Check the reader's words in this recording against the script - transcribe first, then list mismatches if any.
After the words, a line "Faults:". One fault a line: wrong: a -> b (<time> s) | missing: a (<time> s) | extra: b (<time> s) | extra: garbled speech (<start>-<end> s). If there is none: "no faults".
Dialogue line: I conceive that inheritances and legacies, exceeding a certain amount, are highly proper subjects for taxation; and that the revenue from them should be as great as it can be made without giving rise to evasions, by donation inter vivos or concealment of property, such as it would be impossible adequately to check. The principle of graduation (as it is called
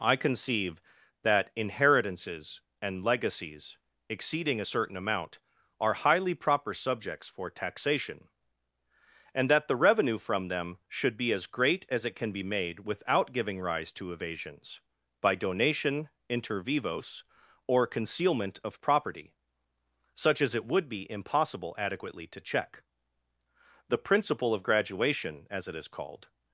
I conceive that inheritances and legacies, exceeding a certain amount, are highly proper subjects for taxation; and that the revenue from them should be as great as it can be made without giving rise to evasions, by donation inter vivos or concealment of property, such as it would be impossible adequately to check. The principle of graduation (as it is called
Faults:
no faults